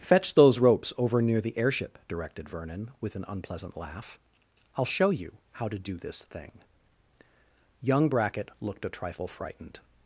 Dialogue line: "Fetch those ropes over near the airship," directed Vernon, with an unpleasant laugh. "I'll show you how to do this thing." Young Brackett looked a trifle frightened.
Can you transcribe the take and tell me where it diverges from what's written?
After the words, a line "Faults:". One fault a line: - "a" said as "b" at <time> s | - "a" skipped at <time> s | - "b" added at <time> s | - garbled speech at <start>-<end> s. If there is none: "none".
"Fetch those ropes over near the airship," directed Vernon, with an unpleasant laugh. "I'll show you how to do this thing." Young Brackett looked a trifle frightened.
Faults:
none